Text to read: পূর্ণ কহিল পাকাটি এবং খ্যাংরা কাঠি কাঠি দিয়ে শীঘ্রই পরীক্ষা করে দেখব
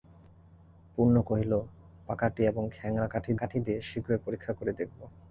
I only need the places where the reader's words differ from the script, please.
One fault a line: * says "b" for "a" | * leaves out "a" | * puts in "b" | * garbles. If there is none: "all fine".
all fine